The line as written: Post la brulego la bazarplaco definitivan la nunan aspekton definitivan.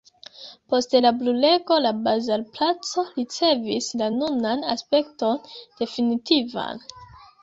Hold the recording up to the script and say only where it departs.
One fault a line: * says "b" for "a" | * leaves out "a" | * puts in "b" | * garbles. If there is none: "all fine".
* says "ricevis" for "definitivan"